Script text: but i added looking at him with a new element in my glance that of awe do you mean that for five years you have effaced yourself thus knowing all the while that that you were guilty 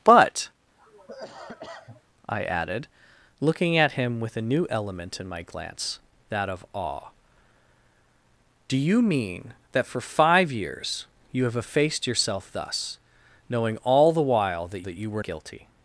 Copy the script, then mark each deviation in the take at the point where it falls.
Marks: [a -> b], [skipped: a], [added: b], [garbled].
but i added looking at him with a new element in my glance that of awe do you mean that for five years you have effaced yourself thus knowing all the while that that you were guilty